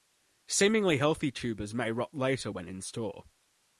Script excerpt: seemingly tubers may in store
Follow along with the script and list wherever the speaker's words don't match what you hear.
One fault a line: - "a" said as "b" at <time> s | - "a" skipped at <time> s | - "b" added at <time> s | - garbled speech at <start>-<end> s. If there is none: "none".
- "healthy" added at 1.0 s
- "rot later when" added at 1.9 s